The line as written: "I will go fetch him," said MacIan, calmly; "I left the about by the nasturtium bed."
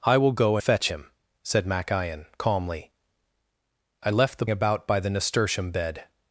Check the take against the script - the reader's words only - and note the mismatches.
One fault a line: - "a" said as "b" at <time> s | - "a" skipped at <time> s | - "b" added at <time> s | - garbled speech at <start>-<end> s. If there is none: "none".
none